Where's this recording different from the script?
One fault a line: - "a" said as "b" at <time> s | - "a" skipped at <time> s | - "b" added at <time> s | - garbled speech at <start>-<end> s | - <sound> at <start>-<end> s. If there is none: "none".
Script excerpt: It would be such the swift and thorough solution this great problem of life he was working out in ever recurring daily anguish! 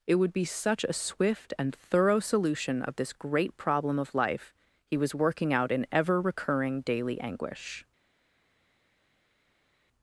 - "the" said as "a" at 0.8 s
- "of" added at 2.8 s